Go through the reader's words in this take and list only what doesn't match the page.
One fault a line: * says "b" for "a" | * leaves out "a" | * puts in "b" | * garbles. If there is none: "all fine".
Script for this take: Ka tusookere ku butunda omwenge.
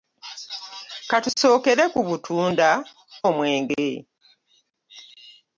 all fine